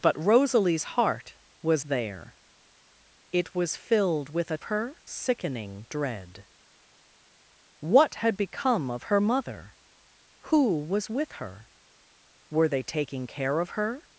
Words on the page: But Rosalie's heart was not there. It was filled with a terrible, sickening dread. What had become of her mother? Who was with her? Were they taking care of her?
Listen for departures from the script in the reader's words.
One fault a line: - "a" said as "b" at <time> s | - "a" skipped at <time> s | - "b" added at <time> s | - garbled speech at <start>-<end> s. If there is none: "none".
- "not" skipped at 1.9 s
- "terrible" said as "her" at 4.6 s